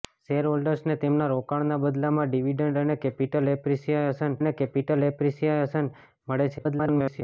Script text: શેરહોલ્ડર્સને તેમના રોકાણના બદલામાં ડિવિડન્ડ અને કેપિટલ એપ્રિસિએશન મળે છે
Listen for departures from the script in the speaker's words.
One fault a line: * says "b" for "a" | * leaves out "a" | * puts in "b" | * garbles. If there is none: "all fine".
* puts in "અને કેપિટલ એપ્રિસિએશન"
* garbles